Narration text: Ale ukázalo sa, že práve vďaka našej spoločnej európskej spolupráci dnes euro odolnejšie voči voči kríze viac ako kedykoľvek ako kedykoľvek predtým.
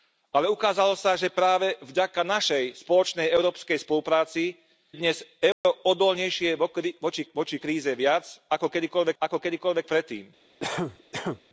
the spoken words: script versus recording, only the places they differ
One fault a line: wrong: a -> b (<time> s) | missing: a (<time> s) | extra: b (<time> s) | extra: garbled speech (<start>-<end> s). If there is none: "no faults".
no faults